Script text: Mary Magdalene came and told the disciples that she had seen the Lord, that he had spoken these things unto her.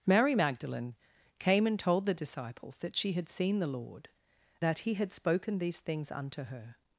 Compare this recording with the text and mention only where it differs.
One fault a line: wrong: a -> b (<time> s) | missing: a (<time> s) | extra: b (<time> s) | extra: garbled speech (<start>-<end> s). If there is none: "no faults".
no faults